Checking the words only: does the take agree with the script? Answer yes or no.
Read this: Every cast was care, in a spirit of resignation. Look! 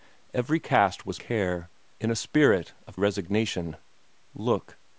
yes